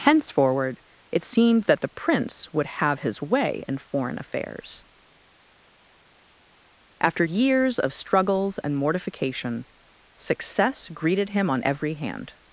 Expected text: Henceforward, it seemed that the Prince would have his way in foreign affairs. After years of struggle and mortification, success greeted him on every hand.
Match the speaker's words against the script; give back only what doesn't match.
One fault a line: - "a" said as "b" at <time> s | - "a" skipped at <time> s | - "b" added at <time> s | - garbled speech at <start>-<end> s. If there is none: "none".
- "struggle" said as "struggles" at 7.9 s